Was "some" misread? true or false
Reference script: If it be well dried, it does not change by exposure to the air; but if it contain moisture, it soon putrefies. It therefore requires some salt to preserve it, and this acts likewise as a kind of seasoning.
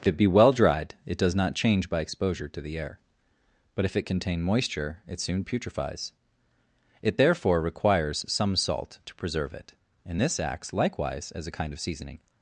false